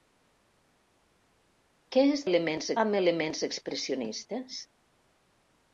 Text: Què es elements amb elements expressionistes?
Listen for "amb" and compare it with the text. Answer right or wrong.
right